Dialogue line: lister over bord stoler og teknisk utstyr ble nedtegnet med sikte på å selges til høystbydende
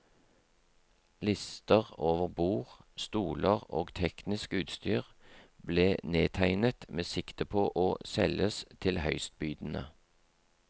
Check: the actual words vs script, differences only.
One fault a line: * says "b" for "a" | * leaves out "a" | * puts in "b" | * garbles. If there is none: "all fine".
all fine